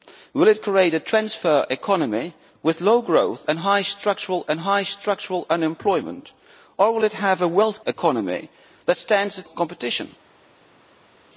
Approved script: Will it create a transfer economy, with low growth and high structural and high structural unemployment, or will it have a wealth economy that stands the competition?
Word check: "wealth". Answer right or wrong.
right